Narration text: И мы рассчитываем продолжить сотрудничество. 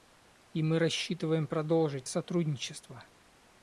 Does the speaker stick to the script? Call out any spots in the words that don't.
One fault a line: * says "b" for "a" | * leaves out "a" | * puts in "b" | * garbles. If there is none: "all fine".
all fine